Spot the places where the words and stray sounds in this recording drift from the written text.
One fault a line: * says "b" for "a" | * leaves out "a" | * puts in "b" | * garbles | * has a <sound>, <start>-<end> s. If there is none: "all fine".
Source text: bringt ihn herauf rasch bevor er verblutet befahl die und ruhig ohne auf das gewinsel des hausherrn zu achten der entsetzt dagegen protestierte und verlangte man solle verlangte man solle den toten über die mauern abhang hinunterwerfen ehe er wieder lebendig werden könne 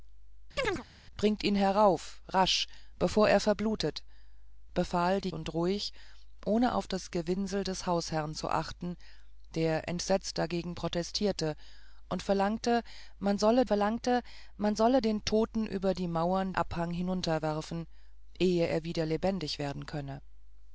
* has a chirp, 0.6-0.8 s